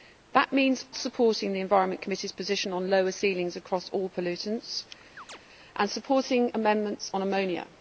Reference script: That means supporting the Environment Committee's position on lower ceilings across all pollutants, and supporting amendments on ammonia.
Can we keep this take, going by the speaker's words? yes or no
yes